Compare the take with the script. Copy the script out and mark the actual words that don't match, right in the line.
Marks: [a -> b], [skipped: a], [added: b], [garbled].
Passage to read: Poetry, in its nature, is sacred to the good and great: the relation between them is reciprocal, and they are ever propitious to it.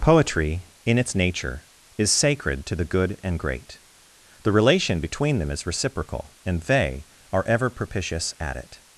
Poetry, in its nature, is sacred to the good and great: the relation between them is reciprocal, and they are ever propitious [to -> at] it.